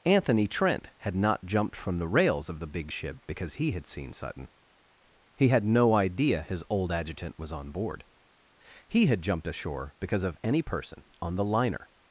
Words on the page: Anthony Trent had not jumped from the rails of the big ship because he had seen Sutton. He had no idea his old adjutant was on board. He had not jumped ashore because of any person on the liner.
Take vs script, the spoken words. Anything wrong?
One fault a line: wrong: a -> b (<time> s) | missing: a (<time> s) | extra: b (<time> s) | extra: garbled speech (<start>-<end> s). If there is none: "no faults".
missing: not (9.2 s)